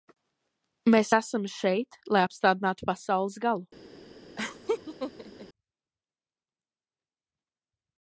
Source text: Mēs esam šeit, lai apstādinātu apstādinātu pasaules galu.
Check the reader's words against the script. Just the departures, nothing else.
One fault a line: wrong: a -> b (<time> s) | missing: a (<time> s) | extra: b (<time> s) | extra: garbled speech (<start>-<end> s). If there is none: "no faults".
missing: apstādinātu (2.9 s)